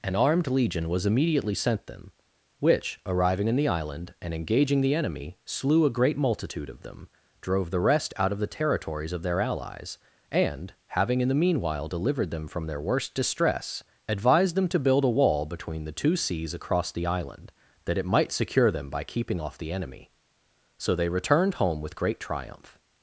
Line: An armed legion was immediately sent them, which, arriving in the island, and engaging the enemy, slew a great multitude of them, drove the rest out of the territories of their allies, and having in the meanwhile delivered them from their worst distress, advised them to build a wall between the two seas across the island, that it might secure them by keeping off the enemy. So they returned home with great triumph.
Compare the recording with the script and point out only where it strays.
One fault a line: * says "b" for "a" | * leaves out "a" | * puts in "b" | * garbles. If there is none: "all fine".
all fine